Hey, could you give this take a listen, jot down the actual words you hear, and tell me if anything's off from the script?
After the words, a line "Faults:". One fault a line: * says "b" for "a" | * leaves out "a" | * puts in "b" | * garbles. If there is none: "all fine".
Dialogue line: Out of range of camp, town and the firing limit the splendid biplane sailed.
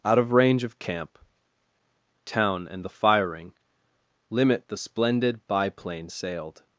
Out of range of camp, town and the firing limit the splendid biplane sailed.
Faults:
all fine